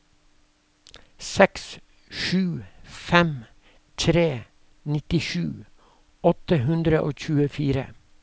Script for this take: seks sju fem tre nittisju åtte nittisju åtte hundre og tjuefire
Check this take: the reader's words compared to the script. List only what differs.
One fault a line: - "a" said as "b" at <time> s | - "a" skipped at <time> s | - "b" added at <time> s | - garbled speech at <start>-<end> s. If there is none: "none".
- "nittisju åtte" skipped at 6.6 s